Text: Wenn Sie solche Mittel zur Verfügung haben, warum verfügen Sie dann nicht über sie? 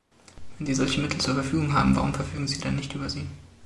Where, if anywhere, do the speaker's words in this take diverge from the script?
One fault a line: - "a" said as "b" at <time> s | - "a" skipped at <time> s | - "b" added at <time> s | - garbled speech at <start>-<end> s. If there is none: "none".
none